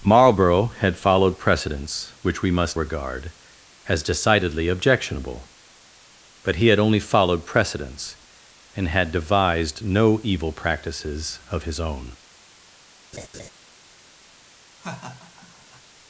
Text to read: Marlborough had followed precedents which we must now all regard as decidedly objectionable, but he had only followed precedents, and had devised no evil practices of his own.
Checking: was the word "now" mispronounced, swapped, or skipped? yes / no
yes